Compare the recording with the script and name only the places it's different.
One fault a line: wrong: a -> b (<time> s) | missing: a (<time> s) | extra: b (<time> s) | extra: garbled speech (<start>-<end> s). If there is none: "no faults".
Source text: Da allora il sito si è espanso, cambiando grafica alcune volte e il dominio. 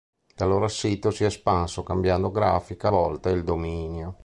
missing: alcune (2.9 s)